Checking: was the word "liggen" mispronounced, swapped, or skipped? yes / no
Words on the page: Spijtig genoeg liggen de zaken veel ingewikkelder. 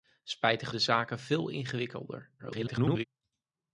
yes